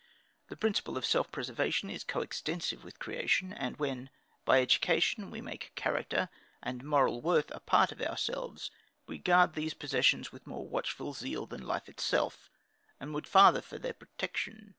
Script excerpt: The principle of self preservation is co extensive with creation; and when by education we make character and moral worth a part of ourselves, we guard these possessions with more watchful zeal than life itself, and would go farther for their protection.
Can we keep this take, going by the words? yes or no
no